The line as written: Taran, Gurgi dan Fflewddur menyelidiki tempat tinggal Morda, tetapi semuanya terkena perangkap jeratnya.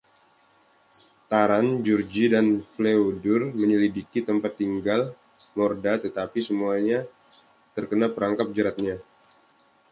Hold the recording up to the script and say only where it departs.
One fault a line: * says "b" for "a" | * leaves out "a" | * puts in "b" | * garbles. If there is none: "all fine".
all fine